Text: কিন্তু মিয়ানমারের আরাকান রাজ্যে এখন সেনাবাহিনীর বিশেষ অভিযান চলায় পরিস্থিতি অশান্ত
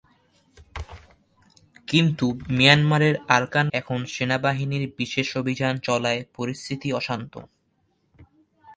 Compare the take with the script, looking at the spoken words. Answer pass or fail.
fail